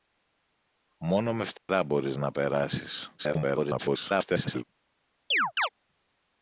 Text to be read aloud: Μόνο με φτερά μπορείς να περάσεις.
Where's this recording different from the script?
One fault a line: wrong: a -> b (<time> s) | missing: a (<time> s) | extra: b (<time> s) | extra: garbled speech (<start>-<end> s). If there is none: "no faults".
extra: garbled speech (3.2-4.6 s)